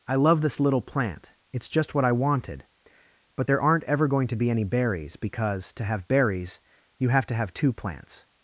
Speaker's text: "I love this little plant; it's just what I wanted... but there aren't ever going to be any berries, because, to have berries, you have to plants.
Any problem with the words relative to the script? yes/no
yes